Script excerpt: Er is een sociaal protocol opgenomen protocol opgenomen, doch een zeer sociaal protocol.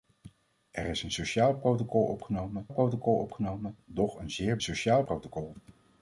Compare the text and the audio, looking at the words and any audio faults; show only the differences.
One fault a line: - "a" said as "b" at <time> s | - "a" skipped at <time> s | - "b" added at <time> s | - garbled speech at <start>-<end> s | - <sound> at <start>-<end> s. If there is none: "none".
none